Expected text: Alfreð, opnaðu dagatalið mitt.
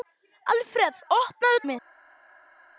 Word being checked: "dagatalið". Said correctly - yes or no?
no